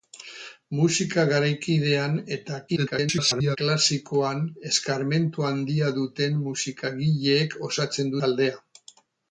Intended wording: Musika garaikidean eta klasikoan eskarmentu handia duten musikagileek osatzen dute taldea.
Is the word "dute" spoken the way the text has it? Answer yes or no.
no